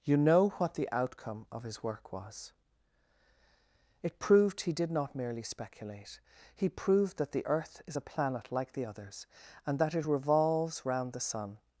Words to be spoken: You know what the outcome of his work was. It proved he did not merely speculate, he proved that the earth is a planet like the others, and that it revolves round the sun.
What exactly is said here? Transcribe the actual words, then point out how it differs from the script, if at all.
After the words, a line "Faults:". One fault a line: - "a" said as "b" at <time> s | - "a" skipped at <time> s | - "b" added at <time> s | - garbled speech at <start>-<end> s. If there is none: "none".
You know what the outcome of his work was. It proved he did not merely speculate, he proved that the earth is a planet like the others, and that it revolves round the sun.
Faults:
none